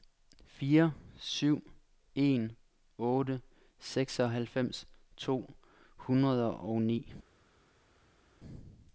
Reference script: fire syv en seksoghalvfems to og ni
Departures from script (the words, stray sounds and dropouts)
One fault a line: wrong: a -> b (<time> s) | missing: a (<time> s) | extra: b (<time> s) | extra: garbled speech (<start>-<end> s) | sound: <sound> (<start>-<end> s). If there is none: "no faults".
extra: otte (3.0 s)
extra: hundrede (6.0 s)